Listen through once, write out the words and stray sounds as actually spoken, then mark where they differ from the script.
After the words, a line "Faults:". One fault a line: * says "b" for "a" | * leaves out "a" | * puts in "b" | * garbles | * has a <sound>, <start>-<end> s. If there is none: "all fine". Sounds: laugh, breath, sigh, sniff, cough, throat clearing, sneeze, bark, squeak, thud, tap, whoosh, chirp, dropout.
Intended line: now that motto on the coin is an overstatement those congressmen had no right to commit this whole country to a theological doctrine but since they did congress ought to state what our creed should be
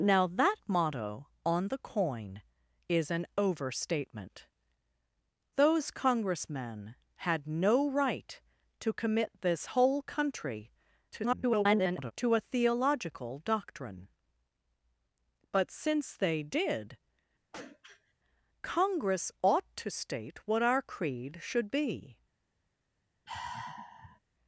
now that motto on the coin is an overstatement those congressmen had no right to commit this whole country [garbled] to a theological doctrine but since they did congress ought to state what our creed should be
Faults:
* garbles
* has a throat clearing, 17.5-18.1 s
* has a sigh, 23.3-24.2 s